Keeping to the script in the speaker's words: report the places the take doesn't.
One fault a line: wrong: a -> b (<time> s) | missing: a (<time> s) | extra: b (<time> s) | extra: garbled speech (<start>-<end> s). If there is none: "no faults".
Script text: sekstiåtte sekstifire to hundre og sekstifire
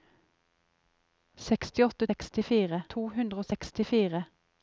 no faults